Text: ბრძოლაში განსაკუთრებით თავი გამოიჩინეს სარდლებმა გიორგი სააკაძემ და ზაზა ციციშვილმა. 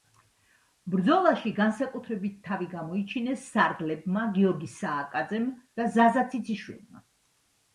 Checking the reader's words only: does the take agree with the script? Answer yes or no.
yes